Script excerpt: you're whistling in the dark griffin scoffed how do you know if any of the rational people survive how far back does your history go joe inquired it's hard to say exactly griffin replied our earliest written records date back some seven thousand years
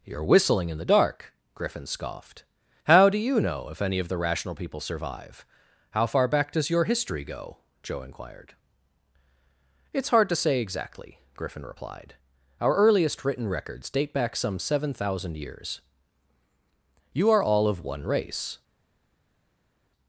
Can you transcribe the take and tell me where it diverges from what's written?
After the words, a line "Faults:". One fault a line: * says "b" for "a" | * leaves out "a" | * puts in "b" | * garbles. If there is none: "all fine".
you're whistling in the dark griffin scoffed how do you know if any of the rational people survive how far back does your history go joe inquired it's hard to say exactly griffin replied our earliest written records date back some seven thousand years you are all of one race
Faults:
* puts in "you are all of one race"